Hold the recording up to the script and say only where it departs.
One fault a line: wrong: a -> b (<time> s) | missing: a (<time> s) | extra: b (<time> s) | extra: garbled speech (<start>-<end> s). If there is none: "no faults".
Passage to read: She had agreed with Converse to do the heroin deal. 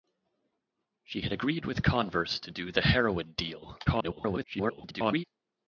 extra: garbled speech (3.9-5.2 s)